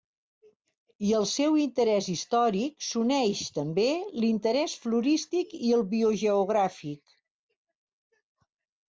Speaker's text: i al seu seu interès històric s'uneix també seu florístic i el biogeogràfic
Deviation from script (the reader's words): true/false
true